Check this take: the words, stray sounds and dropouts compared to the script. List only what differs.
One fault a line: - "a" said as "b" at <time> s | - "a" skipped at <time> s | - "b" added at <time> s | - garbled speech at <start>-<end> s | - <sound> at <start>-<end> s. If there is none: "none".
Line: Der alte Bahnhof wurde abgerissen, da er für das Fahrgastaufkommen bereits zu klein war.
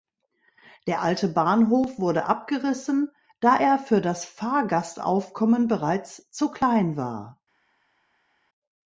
none